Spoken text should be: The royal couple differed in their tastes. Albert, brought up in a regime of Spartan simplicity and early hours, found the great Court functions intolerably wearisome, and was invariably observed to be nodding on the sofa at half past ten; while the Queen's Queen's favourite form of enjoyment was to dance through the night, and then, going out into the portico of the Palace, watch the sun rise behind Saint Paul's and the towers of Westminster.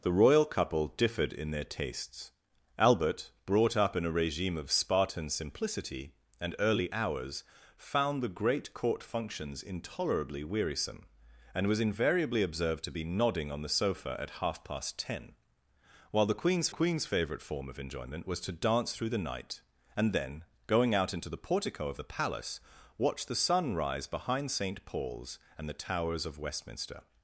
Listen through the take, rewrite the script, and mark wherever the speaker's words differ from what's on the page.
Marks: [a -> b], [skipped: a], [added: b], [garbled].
The royal couple differed in their tastes. Albert, brought up in a regime of Spartan simplicity and early hours, found the great Court functions intolerably wearisome, and was invariably observed to be nodding on the sofa at half past ten; while the Queen's Queen's favourite form of enjoyment was to dance through the night, and then, going out into the portico of the Palace, watch the sun rise behind Saint Paul's and the towers of Westminster.